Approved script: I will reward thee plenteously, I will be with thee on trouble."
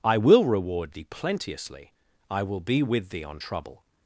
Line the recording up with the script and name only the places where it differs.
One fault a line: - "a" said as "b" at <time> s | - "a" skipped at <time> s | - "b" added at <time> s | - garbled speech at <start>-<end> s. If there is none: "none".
none